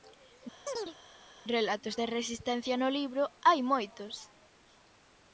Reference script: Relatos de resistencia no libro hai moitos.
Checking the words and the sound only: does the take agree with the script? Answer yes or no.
no